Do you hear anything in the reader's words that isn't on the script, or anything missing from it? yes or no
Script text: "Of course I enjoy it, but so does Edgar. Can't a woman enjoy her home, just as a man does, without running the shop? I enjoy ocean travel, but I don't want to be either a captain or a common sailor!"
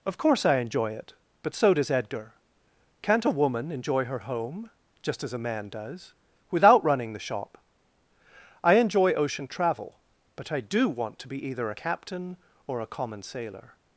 yes